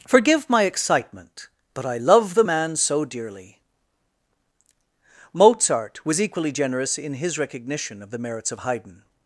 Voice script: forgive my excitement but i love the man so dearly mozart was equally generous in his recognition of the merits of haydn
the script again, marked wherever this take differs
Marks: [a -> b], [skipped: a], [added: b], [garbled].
forgive my excitement but i love the man so dearly mozart was equally generous in his recognition of the merits of haydn